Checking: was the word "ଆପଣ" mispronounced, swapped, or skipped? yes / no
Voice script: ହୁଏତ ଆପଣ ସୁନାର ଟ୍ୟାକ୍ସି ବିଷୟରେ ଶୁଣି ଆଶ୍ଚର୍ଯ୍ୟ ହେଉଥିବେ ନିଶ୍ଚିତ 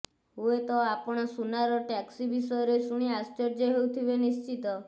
no